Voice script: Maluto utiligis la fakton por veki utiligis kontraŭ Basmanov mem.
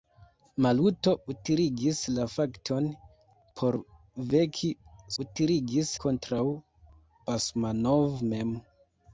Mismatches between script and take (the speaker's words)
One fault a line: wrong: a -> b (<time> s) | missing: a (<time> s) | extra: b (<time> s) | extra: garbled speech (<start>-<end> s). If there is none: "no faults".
no faults